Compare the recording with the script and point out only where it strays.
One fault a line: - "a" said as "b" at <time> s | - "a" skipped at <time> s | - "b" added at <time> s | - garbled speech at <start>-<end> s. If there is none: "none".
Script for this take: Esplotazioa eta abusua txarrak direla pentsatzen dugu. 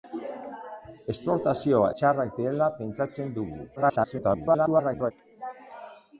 - "eta abusua" skipped at 1.9 s
- garbled speech at 3.8-5.1 s